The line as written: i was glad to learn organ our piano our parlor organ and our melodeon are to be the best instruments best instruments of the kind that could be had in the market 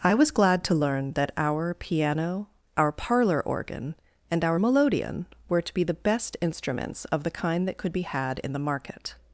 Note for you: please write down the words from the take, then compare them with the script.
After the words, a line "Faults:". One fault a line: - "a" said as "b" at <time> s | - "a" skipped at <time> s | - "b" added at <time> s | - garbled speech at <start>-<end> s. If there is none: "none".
i was glad to learn that our piano our parlor organ and our melodeon were to be the best instruments of the kind that could be had in the market
Faults:
- "organ" said as "that" at 1.1 s
- "are" said as "were" at 5.5 s
- "best instruments" skipped at 7.0 s